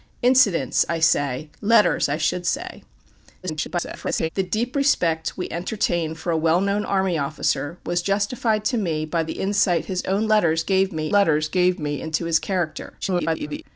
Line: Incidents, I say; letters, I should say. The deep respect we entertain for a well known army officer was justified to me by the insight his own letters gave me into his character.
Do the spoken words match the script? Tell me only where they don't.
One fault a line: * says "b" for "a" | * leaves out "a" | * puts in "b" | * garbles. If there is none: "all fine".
* garbles
* puts in "letters gave me"
* garbles